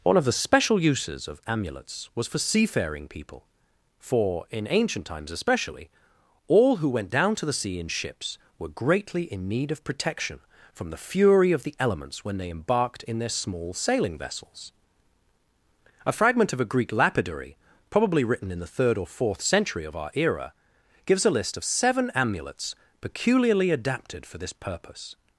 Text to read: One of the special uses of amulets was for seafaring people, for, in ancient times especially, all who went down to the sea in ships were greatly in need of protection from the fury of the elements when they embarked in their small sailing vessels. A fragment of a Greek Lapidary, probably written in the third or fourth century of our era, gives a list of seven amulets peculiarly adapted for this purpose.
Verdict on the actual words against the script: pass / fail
pass